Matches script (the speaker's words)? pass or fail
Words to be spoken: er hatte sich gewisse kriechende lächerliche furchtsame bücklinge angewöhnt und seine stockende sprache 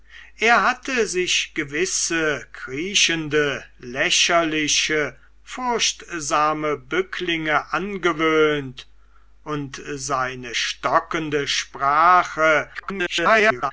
fail